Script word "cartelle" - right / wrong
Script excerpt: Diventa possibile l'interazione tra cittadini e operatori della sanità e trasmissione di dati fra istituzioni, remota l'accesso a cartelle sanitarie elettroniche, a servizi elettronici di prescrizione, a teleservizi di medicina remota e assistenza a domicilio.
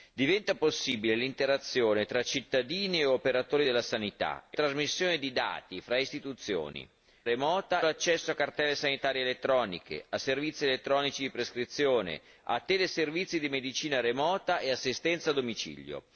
right